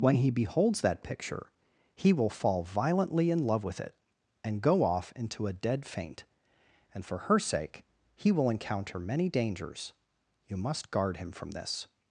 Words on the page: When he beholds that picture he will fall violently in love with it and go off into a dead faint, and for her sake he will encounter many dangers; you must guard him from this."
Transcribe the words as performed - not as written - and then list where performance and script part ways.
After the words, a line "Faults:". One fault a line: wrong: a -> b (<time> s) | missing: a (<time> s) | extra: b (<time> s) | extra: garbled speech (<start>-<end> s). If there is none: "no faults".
When he beholds that picture he will fall violently in love with it and go off into a dead faint, and for her sake he will encounter many dangers; you must guard him from this."
Faults:
no faults